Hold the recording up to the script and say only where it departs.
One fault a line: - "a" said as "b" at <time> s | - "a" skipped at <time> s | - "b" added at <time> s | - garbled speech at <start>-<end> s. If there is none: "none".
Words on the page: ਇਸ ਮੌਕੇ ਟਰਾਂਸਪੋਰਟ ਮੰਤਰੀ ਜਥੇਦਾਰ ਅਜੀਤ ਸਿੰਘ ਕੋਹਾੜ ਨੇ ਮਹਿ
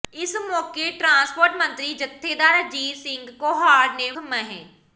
none